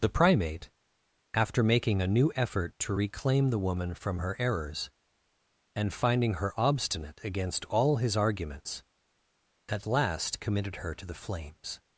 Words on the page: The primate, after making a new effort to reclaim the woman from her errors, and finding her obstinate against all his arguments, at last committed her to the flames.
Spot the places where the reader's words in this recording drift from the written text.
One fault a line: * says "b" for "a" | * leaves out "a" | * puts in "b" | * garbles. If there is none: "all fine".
all fine